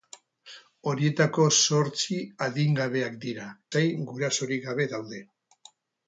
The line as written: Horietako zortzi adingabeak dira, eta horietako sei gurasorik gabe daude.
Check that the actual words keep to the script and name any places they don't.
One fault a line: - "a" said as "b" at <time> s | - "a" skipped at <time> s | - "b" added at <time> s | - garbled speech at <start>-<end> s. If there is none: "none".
- "eta horietako" skipped at 3.5 s